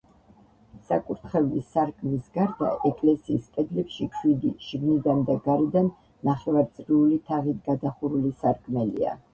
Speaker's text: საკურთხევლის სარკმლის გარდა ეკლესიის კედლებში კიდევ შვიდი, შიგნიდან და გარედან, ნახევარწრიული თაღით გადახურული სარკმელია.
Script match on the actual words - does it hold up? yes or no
no